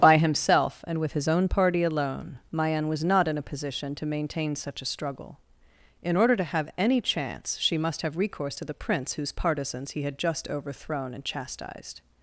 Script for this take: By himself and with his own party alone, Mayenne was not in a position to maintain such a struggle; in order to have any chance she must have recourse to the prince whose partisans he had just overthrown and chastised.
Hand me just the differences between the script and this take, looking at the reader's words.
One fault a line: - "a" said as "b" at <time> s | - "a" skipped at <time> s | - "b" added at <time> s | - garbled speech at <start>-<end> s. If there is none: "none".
none